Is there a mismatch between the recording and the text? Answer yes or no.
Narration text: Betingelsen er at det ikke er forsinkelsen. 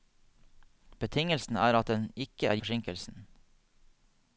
no